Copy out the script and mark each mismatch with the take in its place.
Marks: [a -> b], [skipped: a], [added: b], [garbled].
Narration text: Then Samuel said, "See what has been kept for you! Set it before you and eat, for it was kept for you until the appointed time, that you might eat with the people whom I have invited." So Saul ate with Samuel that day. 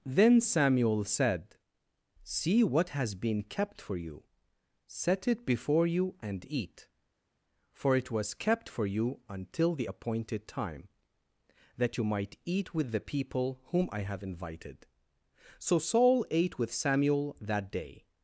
Then Samuel said, "See what has been kept for you! Set it before you and eat, for it was kept for you until the appointed time, that you might eat with the people whom I have invited." So Saul ate with Samuel that day.